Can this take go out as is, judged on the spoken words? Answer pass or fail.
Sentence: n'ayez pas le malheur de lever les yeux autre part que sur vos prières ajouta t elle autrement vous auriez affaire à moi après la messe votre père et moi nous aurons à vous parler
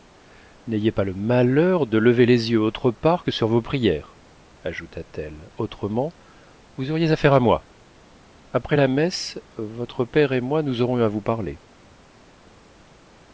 pass